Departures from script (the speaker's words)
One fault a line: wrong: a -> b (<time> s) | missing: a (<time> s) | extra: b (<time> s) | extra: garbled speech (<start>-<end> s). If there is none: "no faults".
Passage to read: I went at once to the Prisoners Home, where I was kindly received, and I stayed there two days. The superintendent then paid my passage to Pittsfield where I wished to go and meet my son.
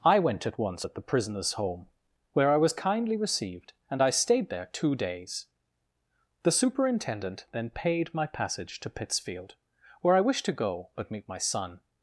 wrong: to -> at (0.8 s)
wrong: and -> but (10.9 s)